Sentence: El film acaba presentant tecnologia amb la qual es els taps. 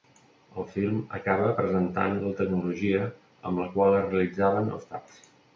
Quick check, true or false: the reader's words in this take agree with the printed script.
false